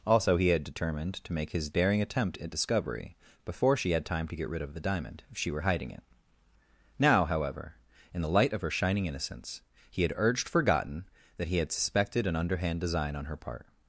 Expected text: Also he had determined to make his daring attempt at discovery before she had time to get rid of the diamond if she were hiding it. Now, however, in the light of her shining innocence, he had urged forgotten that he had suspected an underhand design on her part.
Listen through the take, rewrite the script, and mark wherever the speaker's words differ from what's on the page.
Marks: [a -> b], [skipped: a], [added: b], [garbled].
Also he had determined to make his daring attempt at discovery before she had time to get rid of the diamond if she were hiding it. Now, however, in the light of her shining innocence, he had urged forgotten that he had suspected an underhand design on her part.